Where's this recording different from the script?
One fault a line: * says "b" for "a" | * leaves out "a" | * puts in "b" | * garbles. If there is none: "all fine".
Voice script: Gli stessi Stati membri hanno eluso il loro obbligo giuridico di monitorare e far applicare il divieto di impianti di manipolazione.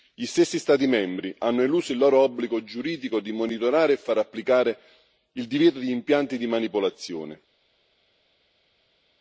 all fine